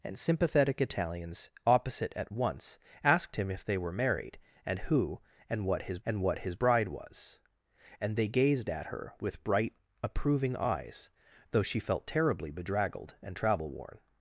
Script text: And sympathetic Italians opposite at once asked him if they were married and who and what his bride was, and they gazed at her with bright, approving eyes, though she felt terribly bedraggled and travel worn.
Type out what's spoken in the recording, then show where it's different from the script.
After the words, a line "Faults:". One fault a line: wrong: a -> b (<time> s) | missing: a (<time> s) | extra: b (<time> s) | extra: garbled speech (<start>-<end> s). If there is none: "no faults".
And sympathetic Italians opposite at once asked him if they were married and who and what his and what his bride was, and they gazed at her with bright, approving eyes, though she felt terribly bedraggled and travel worn.
Faults:
extra: and what his (6.1 s)